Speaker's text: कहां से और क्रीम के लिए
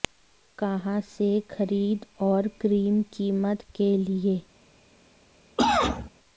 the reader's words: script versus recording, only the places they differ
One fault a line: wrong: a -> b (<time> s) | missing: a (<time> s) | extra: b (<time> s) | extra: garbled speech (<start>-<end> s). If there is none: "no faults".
extra: खरीद (1.5 s)
extra: कीमत (3.1 s)